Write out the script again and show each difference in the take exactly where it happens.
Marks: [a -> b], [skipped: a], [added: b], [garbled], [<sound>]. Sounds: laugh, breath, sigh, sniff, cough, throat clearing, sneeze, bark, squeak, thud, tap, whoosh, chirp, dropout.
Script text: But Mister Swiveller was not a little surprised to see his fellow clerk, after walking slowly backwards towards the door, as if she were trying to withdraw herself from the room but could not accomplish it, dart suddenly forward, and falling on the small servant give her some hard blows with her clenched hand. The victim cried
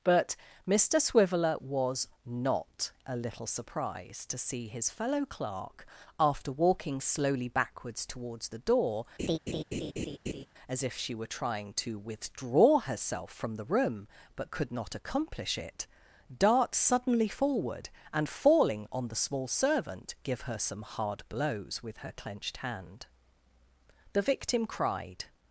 But Mister Swiveller was not a little surprised to see his fellow clerk, after walking slowly backwards towards the door, [laugh] as if she were trying to withdraw herself from the room but could not accomplish it, dart suddenly forward, and falling on the small servant give her some hard blows with her clenched hand. The victim cried